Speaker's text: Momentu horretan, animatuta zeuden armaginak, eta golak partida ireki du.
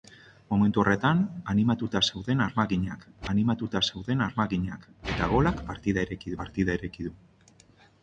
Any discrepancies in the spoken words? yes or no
yes